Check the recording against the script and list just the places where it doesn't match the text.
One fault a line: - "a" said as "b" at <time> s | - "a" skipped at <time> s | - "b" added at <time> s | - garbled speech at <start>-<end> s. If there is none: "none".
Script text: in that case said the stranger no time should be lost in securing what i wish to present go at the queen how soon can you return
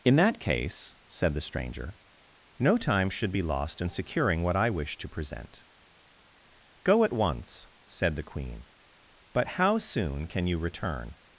- "once said" added at 7.1 s
- "but" added at 9.3 s